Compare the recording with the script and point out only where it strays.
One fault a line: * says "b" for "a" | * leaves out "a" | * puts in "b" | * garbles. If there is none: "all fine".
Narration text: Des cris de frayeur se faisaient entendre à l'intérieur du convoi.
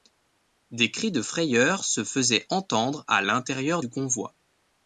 all fine